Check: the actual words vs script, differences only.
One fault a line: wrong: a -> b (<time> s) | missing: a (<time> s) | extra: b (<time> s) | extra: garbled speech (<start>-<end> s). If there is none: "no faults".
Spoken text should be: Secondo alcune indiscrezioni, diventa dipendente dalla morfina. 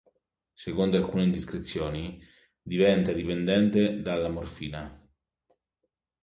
no faults